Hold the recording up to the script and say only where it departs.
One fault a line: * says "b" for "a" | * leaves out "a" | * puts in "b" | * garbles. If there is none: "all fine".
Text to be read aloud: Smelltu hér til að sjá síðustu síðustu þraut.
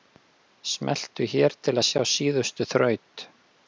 * leaves out "síðustu"